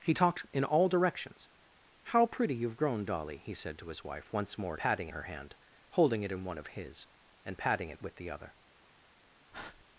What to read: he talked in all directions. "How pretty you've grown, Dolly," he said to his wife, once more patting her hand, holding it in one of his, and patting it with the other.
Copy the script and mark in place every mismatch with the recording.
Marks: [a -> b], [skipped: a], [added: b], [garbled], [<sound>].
he talked in all directions. "How pretty you've grown, Dolly," he said to his wife, once more patting her hand, holding it in one of his, and patting it with the other. [breath]